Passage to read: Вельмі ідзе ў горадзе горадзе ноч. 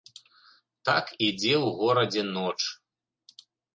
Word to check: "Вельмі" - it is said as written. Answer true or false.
false